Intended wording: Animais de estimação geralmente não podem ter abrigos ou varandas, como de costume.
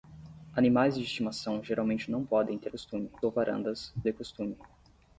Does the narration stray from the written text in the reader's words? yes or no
yes